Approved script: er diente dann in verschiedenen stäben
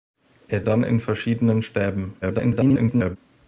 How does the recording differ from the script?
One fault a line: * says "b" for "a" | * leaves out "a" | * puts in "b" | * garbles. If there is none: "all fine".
* leaves out "diente"
* garbles